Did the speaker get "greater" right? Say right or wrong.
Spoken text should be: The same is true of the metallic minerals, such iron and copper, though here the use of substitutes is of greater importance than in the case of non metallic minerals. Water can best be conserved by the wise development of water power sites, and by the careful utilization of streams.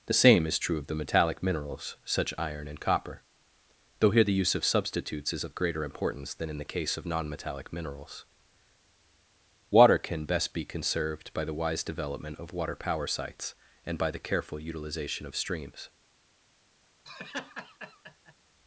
right